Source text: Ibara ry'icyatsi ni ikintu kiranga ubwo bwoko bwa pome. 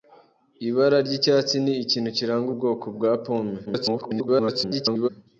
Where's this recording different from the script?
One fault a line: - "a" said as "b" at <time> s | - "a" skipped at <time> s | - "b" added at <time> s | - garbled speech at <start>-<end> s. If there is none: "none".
- "ubwo" skipped at 2.5 s
- garbled speech at 3.7-5.1 s